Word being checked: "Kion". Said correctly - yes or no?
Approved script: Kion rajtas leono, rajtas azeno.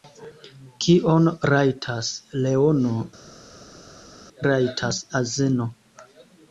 yes